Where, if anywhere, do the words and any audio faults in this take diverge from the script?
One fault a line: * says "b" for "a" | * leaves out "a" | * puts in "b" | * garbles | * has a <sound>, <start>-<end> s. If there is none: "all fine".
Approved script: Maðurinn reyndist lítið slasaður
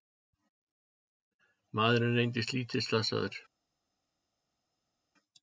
all fine